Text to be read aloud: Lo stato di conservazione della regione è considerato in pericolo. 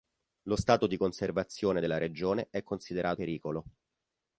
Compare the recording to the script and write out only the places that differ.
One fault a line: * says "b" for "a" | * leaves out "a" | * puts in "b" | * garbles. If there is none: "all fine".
* leaves out "in"